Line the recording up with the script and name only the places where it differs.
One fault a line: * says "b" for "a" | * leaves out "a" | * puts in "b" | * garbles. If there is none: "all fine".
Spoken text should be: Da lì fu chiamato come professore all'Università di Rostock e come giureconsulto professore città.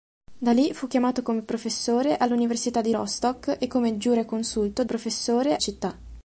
all fine